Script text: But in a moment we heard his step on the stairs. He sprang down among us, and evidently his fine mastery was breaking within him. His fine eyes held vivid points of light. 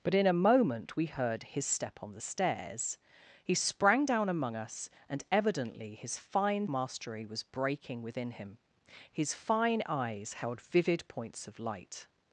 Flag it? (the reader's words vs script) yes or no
no